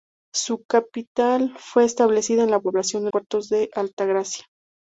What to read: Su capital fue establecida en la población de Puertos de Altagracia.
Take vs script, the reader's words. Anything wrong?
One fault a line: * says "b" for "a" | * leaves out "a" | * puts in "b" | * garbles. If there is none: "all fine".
all fine